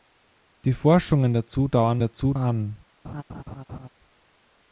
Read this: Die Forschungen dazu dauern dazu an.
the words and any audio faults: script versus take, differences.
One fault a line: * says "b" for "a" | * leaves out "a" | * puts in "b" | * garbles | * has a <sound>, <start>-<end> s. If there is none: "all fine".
* has a laugh, 3.0-3.9 s